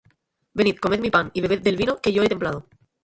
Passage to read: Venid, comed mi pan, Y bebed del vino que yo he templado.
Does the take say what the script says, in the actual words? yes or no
yes